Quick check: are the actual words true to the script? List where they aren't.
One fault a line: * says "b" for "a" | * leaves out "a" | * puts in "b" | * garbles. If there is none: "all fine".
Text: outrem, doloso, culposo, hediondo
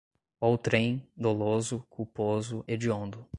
all fine